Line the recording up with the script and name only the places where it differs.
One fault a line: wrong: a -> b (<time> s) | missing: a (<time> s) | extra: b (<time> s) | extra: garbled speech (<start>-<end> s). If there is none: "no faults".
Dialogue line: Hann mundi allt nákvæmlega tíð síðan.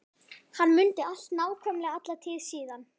extra: alla (2.0 s)